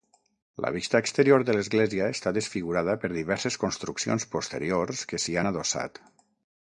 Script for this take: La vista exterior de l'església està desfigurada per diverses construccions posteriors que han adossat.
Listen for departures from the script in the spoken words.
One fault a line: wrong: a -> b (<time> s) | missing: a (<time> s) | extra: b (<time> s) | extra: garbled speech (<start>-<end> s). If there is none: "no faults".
extra: s'hi (5.3 s)